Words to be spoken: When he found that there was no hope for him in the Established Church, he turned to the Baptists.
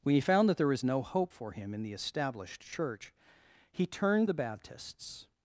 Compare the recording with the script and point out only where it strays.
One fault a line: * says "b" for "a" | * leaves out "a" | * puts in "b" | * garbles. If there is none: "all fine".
* leaves out "to"